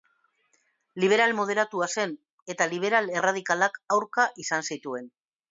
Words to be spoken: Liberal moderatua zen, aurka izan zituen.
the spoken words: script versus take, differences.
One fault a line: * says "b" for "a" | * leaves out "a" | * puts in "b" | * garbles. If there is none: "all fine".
* puts in "eta liberal erradikalak"